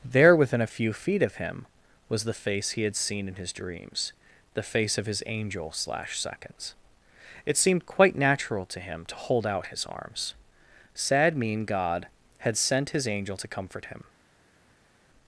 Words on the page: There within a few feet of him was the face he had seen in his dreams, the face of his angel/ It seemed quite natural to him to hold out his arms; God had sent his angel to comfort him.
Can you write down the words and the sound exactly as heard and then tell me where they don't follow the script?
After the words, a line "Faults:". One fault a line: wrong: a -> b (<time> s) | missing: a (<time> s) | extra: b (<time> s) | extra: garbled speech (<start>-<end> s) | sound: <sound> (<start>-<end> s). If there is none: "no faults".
There within a few feet of him was the face he had seen in his dreams, the face of his angel/ slash seconds It seemed quite natural to him to hold out his arms; sad mean God had sent his angel to comfort him.
Faults:
extra: slash seconds (5.7 s)
extra: sad mean (10.9 s)